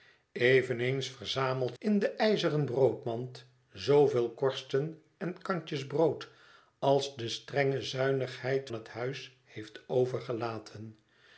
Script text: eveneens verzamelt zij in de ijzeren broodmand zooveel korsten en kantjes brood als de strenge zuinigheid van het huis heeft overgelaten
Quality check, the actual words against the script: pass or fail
fail